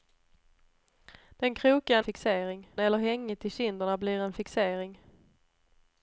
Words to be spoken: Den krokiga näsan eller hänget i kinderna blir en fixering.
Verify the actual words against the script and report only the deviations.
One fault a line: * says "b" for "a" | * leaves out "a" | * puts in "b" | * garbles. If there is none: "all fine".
* says "fixering" for "näsan"